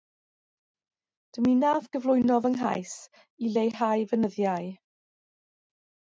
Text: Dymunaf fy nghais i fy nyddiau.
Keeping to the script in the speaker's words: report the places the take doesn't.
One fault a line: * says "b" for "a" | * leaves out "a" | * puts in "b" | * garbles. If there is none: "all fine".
* puts in "gyflwyno"
* puts in "leihau"